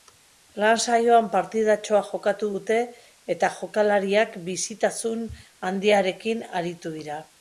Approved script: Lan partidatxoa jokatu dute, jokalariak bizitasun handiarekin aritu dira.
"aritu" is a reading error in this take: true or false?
false